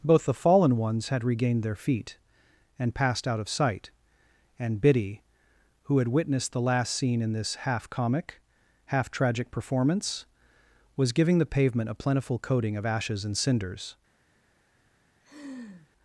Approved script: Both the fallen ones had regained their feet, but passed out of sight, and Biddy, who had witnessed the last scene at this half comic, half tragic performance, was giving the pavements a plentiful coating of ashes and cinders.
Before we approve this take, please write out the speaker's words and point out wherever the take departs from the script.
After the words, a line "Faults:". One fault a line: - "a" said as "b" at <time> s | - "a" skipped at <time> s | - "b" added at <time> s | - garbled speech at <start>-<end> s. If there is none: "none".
Both the fallen ones had regained their feet, and passed out of sight, and Biddy, who had witnessed the last scene in this half comic, half tragic performance, was giving the pavement a plentiful coating of ashes and cinders.
Faults:
- "but" said as "and" at 2.8 s
- "at" said as "in" at 7.2 s
- "pavements" said as "pavement" at 11.4 s